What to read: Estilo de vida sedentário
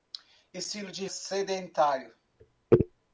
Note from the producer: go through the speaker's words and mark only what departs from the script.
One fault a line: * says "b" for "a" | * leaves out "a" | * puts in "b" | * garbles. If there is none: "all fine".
* leaves out "vida"